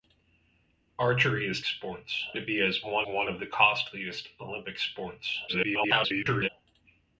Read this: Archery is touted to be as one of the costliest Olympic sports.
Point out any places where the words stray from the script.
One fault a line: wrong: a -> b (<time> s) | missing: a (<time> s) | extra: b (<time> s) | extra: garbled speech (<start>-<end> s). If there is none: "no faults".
wrong: touted -> sports (1.6 s)
extra: one (3.0 s)
extra: garbled speech (5.5-6.5 s)